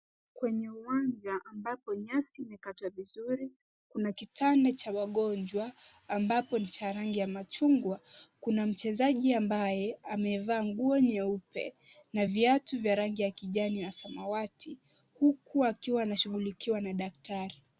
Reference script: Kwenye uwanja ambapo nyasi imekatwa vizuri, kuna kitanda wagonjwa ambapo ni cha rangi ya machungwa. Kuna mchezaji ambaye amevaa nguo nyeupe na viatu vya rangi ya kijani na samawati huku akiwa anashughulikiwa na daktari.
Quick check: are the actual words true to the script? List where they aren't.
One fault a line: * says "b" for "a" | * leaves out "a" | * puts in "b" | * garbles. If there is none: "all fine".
* puts in "cha"